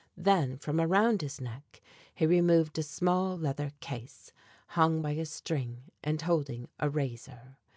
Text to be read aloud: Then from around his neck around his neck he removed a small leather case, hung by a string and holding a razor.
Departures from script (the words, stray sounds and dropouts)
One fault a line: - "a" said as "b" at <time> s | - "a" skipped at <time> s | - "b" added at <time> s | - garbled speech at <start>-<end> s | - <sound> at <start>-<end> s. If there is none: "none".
- "around his neck" skipped at 1.8 s